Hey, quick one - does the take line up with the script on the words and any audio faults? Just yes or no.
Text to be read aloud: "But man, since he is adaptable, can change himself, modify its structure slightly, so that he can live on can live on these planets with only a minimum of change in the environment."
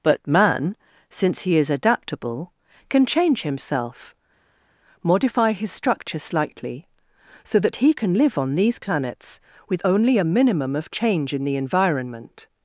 no